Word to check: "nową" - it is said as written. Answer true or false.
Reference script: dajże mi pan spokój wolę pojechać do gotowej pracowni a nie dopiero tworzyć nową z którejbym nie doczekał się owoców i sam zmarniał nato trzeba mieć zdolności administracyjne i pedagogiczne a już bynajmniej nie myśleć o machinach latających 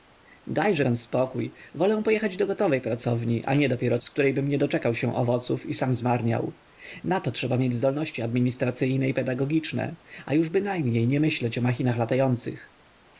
false